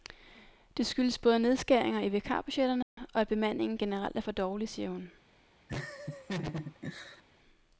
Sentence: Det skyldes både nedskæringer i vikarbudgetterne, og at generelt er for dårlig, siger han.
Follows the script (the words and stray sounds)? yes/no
no